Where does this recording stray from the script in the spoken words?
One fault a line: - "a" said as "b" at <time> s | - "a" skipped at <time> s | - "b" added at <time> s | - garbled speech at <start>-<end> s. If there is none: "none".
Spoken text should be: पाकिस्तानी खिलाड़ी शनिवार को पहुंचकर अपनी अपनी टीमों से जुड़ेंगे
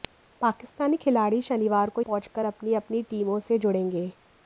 none